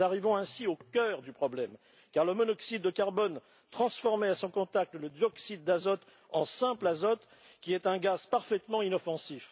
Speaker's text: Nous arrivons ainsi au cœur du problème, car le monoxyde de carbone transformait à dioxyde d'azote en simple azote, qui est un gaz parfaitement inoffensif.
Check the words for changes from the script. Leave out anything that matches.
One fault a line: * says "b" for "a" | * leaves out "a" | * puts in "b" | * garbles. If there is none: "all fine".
* puts in "son contact le"